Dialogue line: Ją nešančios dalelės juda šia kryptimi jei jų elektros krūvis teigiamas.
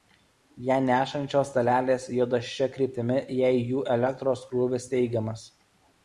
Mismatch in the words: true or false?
false